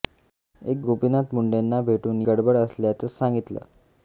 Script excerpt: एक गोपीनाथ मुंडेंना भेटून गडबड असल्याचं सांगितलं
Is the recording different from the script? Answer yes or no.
no